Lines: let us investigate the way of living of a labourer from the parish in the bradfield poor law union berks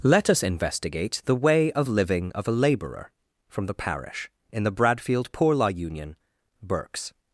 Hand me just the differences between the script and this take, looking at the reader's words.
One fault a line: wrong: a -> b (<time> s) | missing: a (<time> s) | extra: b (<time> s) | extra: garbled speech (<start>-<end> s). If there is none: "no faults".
no faults